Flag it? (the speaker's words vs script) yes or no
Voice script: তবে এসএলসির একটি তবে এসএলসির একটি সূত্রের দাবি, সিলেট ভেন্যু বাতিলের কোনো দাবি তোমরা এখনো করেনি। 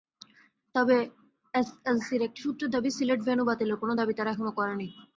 yes